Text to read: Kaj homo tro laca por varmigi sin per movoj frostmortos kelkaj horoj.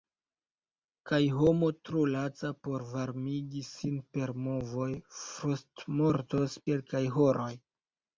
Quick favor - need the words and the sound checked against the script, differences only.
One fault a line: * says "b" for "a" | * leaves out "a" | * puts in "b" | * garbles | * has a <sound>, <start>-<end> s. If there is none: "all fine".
all fine